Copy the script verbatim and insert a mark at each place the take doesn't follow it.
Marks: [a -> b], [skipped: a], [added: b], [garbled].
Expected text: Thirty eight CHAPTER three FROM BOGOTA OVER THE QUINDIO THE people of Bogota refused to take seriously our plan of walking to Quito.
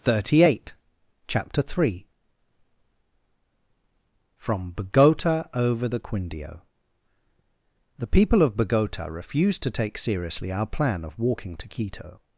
Thirty eight CHAPTER three FROM BOGOTA OVER THE QUINDIO THE people of Bogota refused to take seriously our plan of walking to Quito.